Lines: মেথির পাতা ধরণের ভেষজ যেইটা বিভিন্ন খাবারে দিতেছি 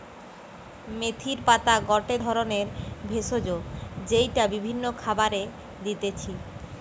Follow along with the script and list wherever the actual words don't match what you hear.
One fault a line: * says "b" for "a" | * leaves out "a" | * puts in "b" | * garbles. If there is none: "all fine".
* puts in "গটে"